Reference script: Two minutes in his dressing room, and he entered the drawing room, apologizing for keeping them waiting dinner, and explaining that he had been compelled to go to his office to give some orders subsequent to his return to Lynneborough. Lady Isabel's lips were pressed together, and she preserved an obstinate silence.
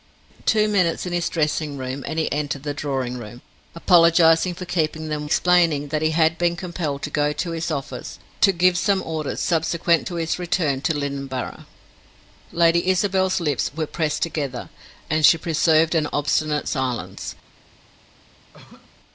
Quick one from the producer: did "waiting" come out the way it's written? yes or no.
no